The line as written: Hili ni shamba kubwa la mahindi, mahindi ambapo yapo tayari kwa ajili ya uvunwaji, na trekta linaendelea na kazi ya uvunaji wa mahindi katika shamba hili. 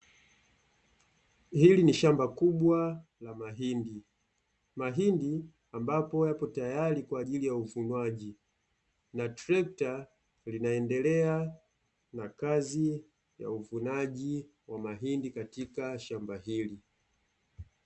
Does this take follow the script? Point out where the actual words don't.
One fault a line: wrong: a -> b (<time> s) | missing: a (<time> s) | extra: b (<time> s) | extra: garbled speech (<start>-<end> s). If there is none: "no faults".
no faults